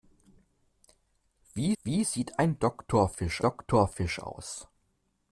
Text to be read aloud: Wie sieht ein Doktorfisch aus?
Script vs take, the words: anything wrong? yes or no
yes